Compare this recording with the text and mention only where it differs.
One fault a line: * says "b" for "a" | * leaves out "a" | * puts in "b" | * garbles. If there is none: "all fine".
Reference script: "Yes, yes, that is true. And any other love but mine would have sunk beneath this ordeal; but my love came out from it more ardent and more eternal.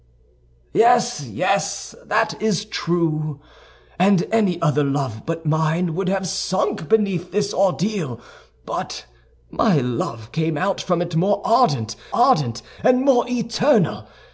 * puts in "ardent"